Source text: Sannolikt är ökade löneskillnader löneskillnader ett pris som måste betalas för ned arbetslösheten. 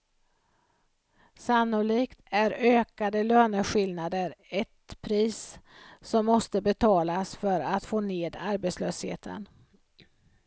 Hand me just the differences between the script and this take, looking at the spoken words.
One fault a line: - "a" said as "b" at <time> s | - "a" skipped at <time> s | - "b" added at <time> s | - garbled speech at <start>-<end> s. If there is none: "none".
- "löneskillnader" skipped at 4.3 s
- "att få" added at 7.6 s